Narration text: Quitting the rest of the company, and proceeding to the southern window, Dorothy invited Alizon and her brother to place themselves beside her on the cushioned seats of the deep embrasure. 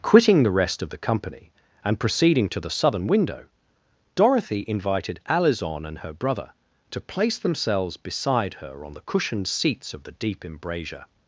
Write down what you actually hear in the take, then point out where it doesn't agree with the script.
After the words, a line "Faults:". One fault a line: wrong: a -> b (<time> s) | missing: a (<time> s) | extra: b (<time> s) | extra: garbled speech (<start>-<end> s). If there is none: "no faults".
Quitting the rest of the company, and proceeding to the southern window, Dorothy invited Alizon and her brother to place themselves beside her on the cushioned seats of the deep embrasure.
Faults:
no faults